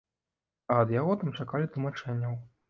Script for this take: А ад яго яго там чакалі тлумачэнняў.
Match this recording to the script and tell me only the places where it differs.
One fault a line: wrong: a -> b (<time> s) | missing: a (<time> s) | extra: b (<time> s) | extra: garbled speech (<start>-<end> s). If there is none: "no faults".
missing: яго (1.1 s)